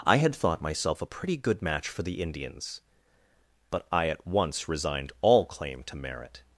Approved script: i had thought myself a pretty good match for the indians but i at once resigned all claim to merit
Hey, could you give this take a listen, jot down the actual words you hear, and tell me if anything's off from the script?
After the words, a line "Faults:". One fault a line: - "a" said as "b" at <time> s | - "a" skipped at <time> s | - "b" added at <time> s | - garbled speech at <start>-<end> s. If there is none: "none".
i had thought myself a pretty good match for the indians but i at once resigned all claim to merit
Faults:
none